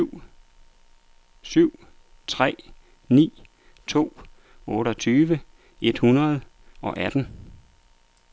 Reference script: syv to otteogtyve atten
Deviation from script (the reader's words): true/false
true